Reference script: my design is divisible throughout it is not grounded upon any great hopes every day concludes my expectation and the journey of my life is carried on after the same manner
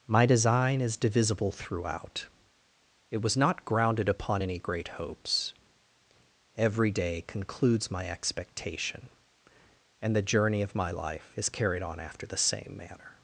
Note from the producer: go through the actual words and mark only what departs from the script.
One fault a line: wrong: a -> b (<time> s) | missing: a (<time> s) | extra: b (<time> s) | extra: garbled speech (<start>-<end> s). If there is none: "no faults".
wrong: is -> was (3.2 s)